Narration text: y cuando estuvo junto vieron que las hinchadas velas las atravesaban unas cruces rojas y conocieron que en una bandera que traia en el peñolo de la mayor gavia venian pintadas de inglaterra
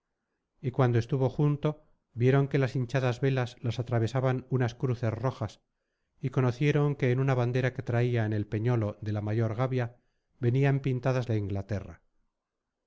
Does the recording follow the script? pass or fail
pass